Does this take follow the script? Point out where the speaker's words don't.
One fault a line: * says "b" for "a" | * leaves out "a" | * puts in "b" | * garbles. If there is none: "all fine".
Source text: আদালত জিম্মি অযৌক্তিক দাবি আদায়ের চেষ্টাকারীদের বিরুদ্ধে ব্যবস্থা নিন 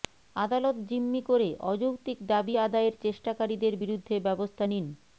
* puts in "করে"